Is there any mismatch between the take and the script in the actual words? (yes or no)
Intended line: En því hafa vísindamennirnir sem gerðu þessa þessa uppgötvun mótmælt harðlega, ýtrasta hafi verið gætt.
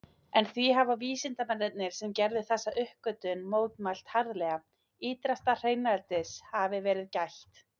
yes